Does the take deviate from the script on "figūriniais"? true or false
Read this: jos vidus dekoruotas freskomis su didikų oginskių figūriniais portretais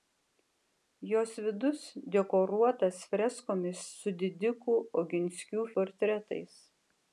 true